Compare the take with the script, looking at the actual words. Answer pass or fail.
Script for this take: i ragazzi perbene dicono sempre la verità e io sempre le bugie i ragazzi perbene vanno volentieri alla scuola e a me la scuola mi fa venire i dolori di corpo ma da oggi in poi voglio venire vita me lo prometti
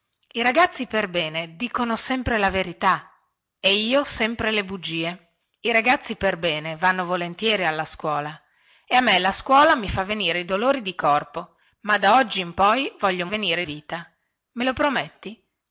pass